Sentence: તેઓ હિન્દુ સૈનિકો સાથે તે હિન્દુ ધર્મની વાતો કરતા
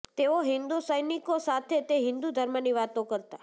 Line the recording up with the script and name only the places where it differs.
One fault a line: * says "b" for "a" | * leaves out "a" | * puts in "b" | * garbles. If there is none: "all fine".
all fine